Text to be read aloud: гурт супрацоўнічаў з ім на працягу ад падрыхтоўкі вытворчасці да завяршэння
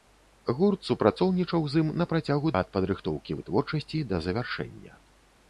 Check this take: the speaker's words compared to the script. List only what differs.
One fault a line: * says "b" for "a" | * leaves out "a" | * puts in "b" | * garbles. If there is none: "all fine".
all fine